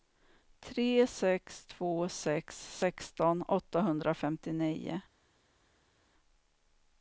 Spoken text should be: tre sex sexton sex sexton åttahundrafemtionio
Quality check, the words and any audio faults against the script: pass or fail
fail